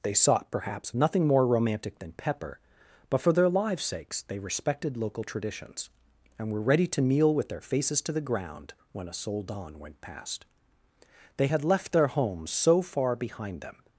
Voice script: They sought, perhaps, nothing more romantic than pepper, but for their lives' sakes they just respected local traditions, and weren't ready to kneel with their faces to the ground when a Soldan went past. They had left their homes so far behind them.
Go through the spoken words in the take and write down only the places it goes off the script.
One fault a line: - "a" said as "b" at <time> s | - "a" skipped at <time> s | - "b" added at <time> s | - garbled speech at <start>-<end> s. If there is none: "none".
- "just" skipped at 4.4 s
- "weren't" said as "were" at 6.5 s